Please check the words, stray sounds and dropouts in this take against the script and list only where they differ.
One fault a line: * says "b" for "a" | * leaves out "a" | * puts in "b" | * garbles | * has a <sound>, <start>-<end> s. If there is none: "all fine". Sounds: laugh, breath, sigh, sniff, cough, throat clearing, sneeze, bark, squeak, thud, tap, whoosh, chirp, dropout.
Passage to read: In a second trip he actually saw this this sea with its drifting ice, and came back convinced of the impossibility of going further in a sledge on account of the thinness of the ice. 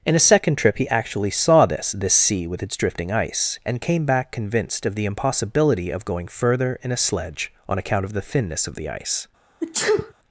* has a sneeze, 9.6-10.1 s